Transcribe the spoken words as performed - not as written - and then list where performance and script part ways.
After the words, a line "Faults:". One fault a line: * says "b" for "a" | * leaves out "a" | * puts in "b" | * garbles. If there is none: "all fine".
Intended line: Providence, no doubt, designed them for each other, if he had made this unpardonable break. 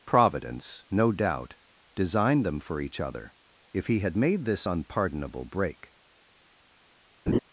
Providence, no doubt, designed them for each other, if he had made this unpardonable break.
Faults:
all fine